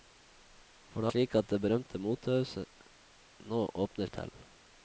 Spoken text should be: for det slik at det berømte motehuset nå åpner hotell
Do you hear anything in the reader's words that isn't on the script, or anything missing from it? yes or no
no